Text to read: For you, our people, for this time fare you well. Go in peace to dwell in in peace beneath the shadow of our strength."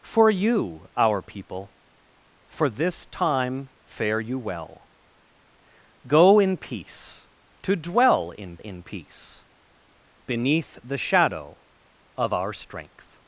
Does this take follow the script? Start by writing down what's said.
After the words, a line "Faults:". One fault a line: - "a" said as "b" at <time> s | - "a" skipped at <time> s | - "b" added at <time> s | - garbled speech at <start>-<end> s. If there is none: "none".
For you, our people, for this time fare you well. Go in peace to dwell in in peace beneath the shadow of our strength."
Faults:
none